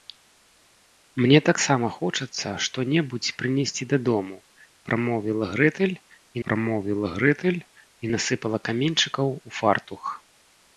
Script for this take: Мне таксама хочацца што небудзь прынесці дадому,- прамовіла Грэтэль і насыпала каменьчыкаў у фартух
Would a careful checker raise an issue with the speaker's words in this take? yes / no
yes